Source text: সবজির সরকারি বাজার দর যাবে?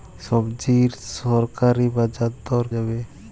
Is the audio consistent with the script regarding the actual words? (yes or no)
yes